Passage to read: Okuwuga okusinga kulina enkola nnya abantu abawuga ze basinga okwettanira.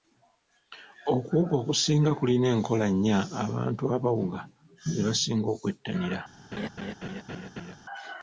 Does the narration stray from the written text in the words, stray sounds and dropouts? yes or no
yes